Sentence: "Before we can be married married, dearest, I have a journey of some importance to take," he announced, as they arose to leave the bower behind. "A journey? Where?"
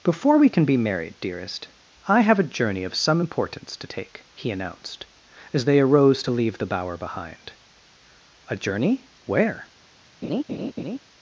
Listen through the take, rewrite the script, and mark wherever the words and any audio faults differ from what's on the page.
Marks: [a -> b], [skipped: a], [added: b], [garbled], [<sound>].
"Before we can be married [skipped: married,] dearest, I have a journey of some importance to take," he announced, as they arose to leave the bower behind. "A journey? Where?" [laugh]